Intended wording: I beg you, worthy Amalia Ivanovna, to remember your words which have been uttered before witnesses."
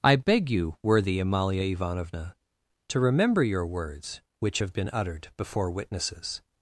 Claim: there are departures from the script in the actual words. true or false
false